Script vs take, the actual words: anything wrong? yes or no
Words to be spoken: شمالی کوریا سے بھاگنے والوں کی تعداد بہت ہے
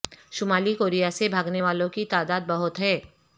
no